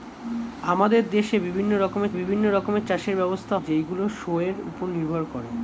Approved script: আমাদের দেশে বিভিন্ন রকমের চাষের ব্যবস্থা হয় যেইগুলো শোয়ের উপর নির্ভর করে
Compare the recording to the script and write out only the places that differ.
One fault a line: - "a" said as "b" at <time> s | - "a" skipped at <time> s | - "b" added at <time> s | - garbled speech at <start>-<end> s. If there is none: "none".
- "বিভিন্ন রকমের" added at 2.1 s
- "হয়" skipped at 3.6 s